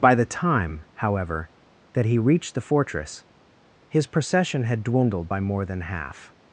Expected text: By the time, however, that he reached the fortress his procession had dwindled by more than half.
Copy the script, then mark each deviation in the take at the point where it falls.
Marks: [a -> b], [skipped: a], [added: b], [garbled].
By the time, however, that he reached the fortress his procession had dwindled by more than half.